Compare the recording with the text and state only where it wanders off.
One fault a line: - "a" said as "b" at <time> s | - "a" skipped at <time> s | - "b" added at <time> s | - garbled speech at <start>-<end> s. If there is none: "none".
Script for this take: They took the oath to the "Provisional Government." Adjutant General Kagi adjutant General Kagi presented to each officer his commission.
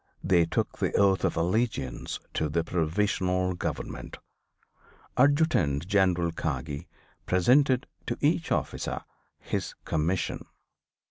- "of allegiance" added at 1.3 s
- "adjutant General Kagi" skipped at 6.9 s